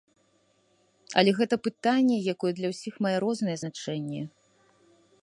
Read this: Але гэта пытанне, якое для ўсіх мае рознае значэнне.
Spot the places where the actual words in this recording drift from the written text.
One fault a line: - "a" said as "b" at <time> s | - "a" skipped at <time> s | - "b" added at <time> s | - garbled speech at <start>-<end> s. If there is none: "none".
none